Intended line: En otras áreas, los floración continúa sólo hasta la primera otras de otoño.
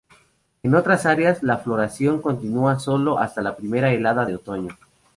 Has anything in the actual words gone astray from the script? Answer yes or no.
yes